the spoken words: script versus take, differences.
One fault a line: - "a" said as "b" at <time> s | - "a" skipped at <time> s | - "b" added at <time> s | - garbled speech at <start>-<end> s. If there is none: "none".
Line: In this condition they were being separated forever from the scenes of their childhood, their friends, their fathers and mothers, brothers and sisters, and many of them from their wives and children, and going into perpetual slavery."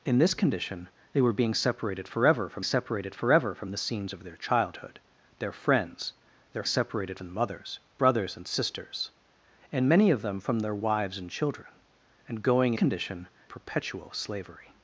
- "separated forever from" added at 2.6 s
- "fathers" said as "separated" at 6.6 s
- "into" said as "condition" at 12.7 s